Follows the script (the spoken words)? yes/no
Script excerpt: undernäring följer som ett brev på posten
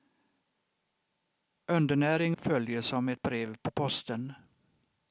yes